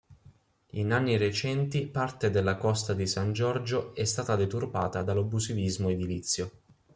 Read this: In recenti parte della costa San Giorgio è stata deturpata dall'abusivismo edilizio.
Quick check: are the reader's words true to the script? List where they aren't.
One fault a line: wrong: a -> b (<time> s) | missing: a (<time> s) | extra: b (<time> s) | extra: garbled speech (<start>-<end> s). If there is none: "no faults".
extra: anni (0.9 s)
extra: di (2.9 s)